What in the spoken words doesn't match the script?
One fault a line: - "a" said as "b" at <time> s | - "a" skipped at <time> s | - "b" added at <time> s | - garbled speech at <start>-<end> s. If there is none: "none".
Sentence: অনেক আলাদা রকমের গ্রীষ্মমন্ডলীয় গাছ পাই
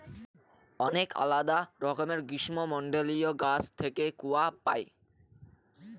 - "থেকে কূয়া" added at 3.8 s